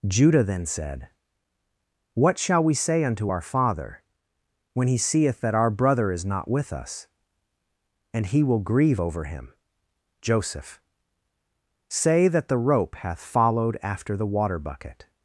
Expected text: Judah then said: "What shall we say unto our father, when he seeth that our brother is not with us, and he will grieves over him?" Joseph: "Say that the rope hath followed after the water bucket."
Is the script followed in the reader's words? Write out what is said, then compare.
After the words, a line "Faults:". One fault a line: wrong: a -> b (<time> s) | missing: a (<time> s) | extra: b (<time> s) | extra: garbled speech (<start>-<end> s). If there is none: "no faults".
Judah then said: "What shall we say unto our father, when he seeth that our brother is not with us, and he will grieve over him?" Joseph: "Say that the rope hath followed after the water bucket."
Faults:
wrong: grieves -> grieve (8.6 s)